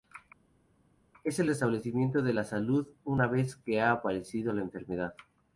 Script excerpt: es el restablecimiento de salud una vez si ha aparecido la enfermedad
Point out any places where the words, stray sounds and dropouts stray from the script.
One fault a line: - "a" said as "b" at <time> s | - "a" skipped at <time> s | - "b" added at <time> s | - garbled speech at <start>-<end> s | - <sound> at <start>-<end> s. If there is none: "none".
- "la" added at 2.3 s
- "si" said as "que" at 3.6 s